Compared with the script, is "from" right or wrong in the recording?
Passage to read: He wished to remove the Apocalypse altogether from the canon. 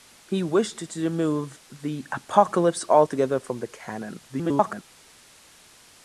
right